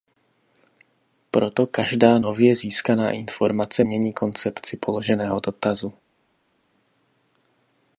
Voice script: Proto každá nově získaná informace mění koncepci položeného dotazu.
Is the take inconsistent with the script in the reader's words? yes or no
no